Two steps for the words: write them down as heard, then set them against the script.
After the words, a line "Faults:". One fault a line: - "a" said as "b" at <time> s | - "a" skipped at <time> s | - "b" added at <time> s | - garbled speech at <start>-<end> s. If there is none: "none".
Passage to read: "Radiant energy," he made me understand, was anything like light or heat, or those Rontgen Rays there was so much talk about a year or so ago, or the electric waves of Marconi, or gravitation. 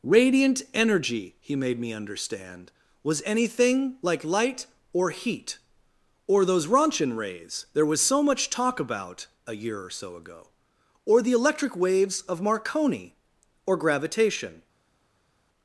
"Radiant energy," he made me understand, was anything like light or heat, or those Rontgen Rays there was so much talk about a year or so ago, or the electric waves of Marconi, or gravitation.
Faults:
none